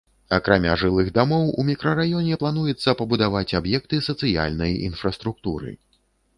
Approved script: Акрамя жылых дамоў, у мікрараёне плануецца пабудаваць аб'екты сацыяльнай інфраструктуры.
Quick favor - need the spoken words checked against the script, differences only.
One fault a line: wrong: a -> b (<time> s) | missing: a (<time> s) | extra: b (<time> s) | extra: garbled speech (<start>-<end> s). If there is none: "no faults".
no faults